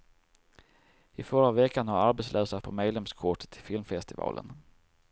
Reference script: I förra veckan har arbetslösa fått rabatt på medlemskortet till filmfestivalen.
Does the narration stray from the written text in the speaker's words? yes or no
yes